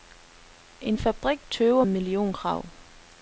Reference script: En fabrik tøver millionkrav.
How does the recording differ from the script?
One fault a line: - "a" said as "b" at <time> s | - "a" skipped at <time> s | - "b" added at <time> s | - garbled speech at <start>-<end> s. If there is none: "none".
none